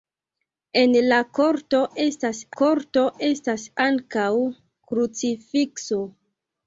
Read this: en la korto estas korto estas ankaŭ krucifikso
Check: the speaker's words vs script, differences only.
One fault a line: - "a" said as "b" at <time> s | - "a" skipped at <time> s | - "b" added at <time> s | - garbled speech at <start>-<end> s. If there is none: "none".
none